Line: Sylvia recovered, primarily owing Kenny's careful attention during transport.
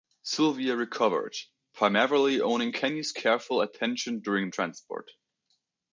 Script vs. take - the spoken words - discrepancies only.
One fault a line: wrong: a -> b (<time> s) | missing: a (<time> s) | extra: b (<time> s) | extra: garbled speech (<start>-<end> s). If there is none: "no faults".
no faults